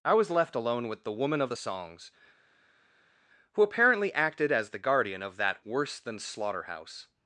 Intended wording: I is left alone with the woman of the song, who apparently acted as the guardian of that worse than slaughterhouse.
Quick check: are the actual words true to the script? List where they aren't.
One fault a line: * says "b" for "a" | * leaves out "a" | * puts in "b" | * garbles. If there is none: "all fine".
* says "was" for "is"
* says "songs" for "song"